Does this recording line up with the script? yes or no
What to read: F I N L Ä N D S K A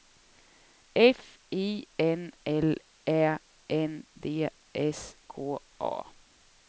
yes